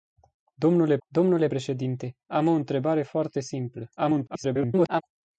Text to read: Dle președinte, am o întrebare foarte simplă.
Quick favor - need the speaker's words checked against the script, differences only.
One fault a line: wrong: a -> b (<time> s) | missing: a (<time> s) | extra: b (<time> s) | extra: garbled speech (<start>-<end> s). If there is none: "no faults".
extra: dle (1.1 s)
extra: garbled speech (4.0-5.0 s)